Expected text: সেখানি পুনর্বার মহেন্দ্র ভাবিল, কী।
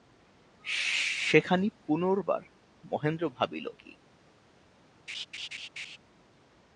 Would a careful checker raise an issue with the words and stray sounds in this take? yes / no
yes